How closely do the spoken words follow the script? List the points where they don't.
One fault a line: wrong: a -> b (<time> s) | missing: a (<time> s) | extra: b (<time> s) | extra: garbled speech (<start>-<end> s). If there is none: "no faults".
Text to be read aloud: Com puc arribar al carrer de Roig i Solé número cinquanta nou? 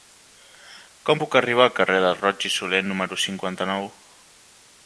no faults